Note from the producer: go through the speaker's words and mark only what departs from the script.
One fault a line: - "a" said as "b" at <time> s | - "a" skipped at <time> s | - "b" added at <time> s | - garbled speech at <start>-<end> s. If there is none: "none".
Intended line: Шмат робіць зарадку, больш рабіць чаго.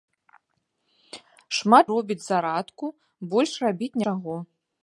none